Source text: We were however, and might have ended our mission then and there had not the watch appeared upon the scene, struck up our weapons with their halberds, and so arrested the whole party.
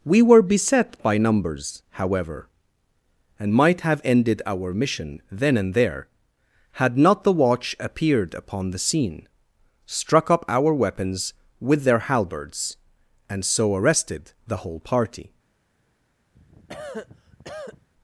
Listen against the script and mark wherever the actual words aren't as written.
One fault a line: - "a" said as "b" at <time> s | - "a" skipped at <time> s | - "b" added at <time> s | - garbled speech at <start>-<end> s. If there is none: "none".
- "beset by numbers" added at 0.4 s